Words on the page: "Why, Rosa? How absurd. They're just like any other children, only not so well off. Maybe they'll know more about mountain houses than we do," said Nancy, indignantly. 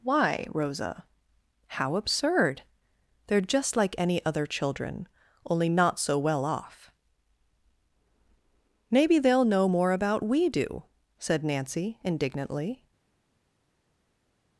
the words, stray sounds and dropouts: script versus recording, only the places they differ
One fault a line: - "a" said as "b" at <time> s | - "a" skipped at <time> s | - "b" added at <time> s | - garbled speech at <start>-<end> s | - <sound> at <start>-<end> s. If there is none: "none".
- "mountain houses than" skipped at 10.2 s